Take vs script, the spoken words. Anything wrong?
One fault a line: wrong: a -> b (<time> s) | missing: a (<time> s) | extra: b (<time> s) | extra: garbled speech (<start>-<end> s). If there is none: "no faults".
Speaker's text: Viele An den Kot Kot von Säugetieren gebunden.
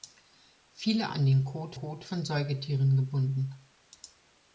no faults